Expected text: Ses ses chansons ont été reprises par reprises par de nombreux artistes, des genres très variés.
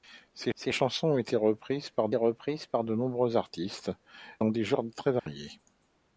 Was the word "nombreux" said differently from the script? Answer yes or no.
no